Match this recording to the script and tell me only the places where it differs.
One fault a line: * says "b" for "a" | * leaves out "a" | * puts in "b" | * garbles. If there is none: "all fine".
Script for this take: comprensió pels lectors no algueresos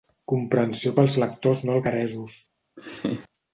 all fine